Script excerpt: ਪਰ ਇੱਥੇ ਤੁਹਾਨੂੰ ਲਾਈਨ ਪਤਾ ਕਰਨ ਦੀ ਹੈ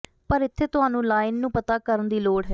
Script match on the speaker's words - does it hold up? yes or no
no